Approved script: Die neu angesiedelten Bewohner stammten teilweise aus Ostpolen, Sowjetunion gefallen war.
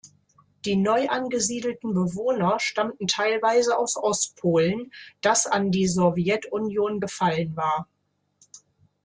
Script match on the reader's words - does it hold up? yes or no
no